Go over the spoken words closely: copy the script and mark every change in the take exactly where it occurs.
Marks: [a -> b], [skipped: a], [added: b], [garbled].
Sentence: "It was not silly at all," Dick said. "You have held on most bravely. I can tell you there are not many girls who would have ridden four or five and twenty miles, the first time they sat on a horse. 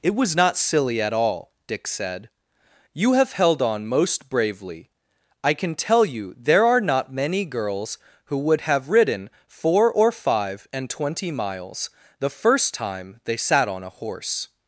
"It was not silly at all," Dick said. "You have held on most bravely. I can tell you there are not many girls who would have ridden four or five and twenty miles, the first time they sat on a horse.